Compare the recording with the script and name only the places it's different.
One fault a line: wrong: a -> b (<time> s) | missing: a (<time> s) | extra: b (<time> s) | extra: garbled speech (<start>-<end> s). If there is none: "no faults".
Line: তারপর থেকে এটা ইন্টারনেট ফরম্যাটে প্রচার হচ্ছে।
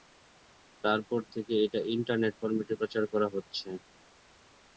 extra: করা (3.1 s)